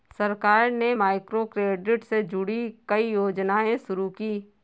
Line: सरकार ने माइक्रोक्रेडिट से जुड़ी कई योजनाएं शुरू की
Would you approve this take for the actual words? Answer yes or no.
yes